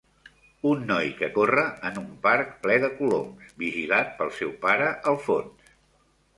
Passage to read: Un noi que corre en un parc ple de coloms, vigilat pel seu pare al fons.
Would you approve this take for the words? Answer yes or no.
yes